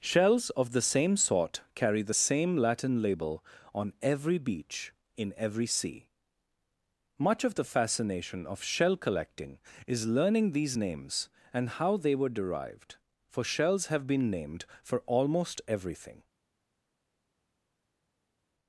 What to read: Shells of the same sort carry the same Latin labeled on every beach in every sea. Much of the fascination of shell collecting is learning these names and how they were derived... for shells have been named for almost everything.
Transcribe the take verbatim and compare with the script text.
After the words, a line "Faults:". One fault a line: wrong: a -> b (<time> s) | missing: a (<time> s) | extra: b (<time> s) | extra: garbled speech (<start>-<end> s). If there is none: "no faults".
Shells of the same sort carry the same Latin label on every beach in every sea. Much of the fascination of shell collecting is learning these names and how they were derived... for shells have been named for almost everything.
Faults:
wrong: labeled -> label (3.0 s)